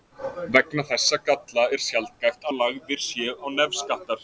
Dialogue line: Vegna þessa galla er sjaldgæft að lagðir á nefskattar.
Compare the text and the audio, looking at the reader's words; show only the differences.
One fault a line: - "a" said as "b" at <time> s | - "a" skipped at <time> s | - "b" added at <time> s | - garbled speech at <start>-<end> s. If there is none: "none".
- "séu" added at 3.1 s